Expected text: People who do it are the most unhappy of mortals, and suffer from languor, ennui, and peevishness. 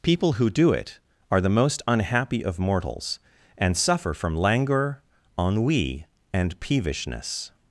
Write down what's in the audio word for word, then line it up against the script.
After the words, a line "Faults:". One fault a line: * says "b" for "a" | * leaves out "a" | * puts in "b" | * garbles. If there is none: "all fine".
People who do it are the most unhappy of mortals, and suffer from languor, ennui, and peevishness.
Faults:
all fine